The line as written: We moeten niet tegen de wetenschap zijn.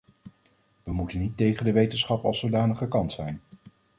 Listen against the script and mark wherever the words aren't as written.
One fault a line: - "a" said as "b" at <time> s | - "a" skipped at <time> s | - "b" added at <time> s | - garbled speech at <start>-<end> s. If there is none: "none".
- "als zodanig gekant" added at 2.2 s